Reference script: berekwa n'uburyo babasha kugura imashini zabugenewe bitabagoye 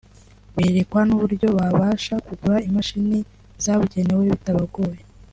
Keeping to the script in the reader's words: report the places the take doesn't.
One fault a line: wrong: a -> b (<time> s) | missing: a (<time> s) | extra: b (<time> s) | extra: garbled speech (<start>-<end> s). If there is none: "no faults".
no faults